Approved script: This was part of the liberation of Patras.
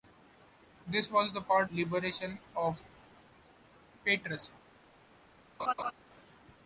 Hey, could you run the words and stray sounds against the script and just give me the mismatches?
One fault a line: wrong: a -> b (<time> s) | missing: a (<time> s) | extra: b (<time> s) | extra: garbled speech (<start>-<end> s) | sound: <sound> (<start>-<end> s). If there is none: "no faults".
missing: of the (1.7 s)
sound: laugh (5.6-5.9 s)